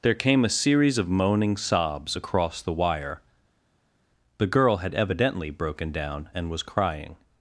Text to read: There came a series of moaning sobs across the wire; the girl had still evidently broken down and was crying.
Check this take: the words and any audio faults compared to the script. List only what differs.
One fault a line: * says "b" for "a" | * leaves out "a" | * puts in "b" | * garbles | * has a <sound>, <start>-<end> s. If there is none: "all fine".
* leaves out "still"